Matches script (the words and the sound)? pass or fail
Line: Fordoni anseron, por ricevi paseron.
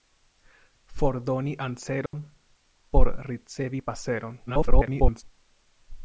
fail